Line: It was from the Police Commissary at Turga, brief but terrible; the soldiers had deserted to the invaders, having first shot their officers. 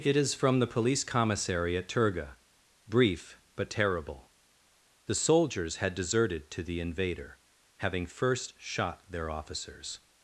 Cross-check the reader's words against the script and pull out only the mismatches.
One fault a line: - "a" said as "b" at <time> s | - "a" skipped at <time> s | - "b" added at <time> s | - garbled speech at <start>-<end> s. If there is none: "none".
- "was" said as "is" at 0.1 s
- "invaders" said as "invader" at 6.8 s